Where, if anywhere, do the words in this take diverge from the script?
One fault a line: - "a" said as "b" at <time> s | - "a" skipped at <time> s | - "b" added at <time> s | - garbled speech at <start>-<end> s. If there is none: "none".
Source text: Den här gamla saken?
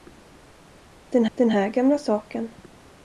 - "den" added at 1.3 s